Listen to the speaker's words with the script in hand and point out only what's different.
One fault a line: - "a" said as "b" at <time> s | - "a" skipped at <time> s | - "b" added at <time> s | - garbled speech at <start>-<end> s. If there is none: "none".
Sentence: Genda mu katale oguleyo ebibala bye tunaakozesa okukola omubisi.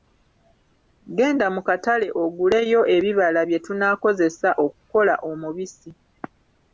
none